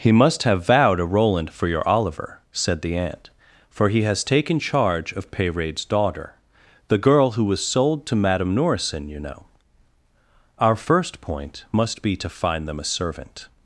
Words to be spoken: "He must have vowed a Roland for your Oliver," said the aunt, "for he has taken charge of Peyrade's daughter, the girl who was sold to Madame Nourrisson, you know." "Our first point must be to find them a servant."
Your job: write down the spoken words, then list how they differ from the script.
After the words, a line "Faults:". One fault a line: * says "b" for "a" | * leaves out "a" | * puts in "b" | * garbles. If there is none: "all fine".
"He must have vowed a Roland for your Oliver," said the aunt, "for he has taken charge of Peyrade's daughter, the girl who was sold to Madame Nourrisson, you know." "Our first point must be to find them a servant."
Faults:
all fine